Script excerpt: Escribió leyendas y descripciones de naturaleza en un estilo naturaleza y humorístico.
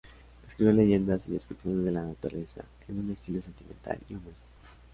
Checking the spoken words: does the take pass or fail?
fail